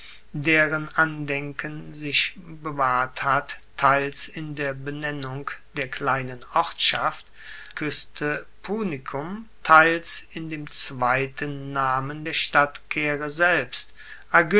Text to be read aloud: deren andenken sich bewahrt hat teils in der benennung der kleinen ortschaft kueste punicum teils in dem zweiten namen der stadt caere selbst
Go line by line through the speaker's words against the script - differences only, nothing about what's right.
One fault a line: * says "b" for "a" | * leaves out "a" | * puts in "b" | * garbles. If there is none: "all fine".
all fine